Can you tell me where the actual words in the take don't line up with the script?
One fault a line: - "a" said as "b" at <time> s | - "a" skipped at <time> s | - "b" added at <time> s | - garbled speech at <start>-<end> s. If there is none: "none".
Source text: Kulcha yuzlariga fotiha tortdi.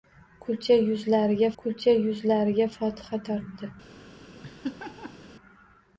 - "kulcha yuzlariga" added at 1.6 s